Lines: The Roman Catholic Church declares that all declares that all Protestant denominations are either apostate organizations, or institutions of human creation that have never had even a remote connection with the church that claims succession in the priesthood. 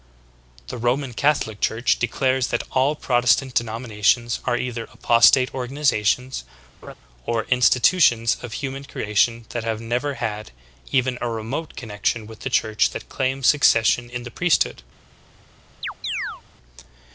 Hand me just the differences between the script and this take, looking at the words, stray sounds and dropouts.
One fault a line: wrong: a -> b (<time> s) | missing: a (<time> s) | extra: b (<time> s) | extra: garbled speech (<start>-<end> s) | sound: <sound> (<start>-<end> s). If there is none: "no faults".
missing: declares that all (3.0 s)
sound: laugh (6.8-6.9 s)
sound: chirp (15.8-16.4 s)